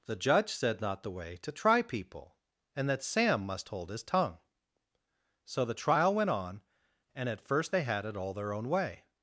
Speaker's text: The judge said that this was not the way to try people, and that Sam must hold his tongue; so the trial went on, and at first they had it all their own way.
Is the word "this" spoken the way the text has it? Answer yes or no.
no